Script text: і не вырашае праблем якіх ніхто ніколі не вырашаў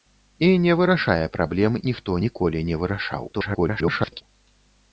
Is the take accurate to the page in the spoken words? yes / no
no